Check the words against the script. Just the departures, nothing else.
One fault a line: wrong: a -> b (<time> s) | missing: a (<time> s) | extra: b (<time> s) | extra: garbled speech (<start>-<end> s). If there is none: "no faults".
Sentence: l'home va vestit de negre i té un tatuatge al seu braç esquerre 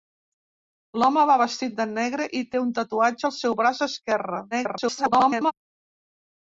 extra: garbled speech (4.5-5.5 s)